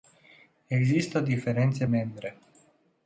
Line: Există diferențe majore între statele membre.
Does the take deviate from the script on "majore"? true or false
true